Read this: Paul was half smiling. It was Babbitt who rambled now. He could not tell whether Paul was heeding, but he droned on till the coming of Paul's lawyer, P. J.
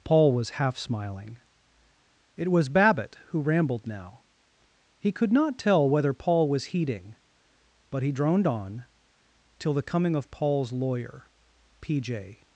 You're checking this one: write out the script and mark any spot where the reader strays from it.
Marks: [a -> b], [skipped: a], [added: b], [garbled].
Paul was half smiling. It was Babbitt who rambled now. He could not tell whether Paul was heeding, but he droned on till the coming of Paul's lawyer, P. J.